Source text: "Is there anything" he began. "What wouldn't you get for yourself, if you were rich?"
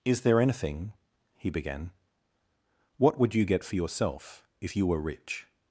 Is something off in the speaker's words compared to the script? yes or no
yes